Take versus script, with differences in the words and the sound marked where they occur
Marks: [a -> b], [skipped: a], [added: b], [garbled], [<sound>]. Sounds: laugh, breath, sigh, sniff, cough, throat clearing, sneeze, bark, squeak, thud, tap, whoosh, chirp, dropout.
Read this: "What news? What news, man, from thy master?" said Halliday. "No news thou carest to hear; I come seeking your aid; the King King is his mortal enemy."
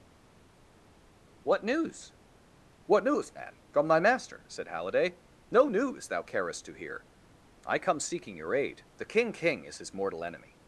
"What news? What news, man, from thy master?" said Halliday. "No news thou carest to hear; I come seeking your aid; the King King is his mortal enemy."